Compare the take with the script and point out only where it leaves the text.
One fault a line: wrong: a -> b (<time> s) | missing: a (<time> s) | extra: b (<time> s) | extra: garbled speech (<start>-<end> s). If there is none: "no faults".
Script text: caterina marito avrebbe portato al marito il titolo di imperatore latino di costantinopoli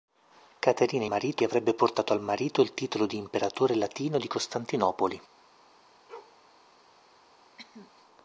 no faults